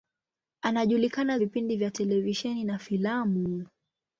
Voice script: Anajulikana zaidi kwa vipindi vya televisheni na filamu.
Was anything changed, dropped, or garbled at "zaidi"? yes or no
yes